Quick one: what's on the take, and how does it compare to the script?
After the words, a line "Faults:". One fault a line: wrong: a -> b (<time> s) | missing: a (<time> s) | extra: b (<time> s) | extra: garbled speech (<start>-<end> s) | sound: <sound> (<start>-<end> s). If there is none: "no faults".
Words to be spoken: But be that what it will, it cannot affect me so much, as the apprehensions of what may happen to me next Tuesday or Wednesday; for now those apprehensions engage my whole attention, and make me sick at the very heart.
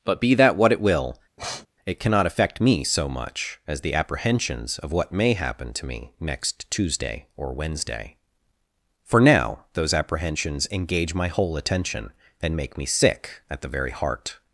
But be that what it will, it cannot affect me so much, as the apprehensions of what may happen to me next Tuesday or Wednesday; for now those apprehensions engage my whole attention, and make me sick at the very heart.
Faults:
sound: sniff (1.4-1.7 s)